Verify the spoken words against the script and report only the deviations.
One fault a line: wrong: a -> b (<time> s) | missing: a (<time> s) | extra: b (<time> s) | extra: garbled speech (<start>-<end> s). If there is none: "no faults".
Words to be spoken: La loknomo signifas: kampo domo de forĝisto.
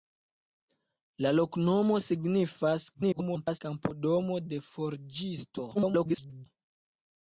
extra: garbled speech (2.9-3.6 s)
extra: garbled speech (5.7-6.5 s)